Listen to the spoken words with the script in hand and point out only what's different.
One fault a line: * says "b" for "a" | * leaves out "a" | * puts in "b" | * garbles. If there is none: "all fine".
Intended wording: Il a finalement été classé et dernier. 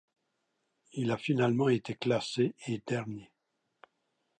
all fine